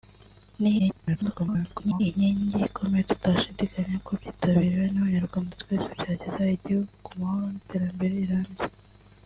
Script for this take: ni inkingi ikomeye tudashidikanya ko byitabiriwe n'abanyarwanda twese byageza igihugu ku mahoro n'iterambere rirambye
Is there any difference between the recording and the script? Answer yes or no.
yes